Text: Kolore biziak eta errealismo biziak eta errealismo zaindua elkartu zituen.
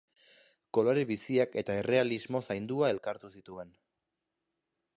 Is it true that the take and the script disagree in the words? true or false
true